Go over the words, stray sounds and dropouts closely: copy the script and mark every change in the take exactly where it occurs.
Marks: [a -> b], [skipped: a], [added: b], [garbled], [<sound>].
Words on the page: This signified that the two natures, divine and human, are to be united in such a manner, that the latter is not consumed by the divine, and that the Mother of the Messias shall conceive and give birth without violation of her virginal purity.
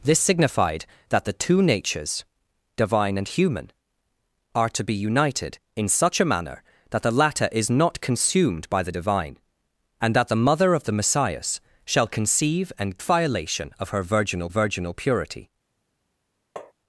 This signified that the two natures, divine and human, are to be united in such a manner, that the latter is not consumed by the divine, and that the Mother of the Messias shall conceive and [skipped: give birth without] violation of her virginal [added: virginal] purity. [tap]